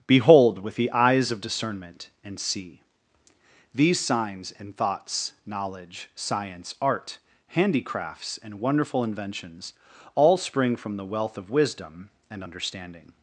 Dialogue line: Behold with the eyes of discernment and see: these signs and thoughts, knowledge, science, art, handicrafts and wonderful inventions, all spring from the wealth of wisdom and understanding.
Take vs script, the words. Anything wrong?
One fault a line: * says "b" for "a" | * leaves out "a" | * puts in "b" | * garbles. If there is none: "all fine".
all fine